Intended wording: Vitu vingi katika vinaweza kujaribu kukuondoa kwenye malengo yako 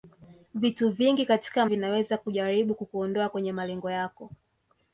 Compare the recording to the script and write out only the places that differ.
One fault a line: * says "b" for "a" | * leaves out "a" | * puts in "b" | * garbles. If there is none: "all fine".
all fine